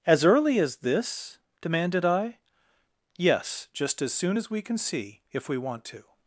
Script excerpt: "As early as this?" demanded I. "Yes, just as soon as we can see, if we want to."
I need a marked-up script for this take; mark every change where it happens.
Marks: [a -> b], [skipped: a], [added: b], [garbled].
"As early as this?" demanded I. "Yes, just as soon as we can see, if we want to."